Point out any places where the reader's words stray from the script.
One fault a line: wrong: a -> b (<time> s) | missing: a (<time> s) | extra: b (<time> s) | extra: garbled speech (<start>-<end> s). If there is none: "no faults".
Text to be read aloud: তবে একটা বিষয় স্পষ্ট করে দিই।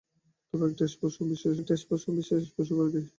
extra: একটা বিষয় (1.6 s)